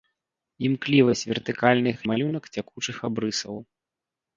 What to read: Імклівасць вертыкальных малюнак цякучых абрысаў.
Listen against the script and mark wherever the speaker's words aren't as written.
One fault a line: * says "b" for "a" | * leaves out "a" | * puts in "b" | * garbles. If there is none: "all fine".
all fine